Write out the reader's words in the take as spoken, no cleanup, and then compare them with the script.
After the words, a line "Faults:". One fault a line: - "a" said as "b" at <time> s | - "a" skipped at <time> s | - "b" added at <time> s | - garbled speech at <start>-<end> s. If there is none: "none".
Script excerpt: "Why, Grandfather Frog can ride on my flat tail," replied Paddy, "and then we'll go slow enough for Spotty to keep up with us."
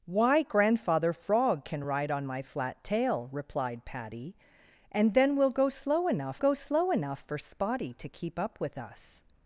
"Why, Grandfather Frog can ride on my flat tail," replied Paddy, "and then we'll go slow enough go slow enough for Spotty to keep up with us."
Faults:
- "go slow enough" added at 6.4 s